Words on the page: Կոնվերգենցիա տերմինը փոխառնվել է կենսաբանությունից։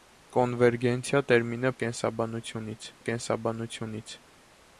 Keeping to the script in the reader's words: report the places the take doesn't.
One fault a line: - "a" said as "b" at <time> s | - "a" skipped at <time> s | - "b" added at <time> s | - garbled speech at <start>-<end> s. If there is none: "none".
- "փոխառնվել" said as "կենսաբանությունից" at 1.8 s